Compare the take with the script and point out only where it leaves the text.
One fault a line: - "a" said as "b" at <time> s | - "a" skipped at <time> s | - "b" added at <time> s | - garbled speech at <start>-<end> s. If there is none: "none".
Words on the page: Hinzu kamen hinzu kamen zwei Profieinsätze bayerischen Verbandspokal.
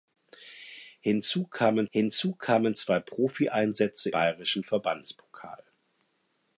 none